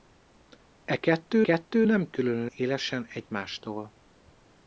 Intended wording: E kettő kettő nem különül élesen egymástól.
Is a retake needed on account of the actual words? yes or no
no